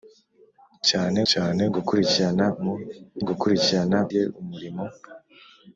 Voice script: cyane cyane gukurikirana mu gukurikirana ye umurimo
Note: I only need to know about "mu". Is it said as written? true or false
true